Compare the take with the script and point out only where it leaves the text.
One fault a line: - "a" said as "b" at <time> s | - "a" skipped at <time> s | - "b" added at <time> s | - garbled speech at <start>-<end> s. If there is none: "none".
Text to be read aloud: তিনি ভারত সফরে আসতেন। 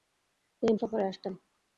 - "ভারত" skipped at 0.7 s